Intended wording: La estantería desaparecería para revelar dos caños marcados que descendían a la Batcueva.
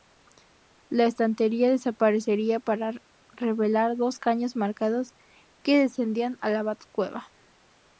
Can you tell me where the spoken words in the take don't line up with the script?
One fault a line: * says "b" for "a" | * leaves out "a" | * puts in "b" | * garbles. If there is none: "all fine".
all fine